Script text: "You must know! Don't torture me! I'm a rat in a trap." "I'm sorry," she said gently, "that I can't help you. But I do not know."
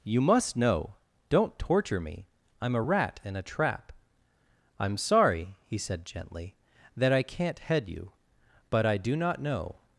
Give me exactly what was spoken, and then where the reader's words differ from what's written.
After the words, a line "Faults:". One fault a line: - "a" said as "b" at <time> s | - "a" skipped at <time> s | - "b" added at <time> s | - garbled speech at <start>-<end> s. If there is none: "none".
"You must know! Don't torture me! I'm a rat in a trap." "I'm sorry," he said gently, "that I can't head you. But I do not know."
Faults:
- "she" said as "he" at 5.7 s
- "help" said as "head" at 7.6 s